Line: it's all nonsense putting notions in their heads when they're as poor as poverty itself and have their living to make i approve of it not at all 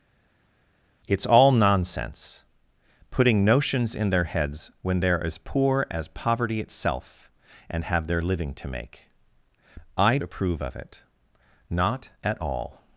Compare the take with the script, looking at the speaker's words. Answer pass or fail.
pass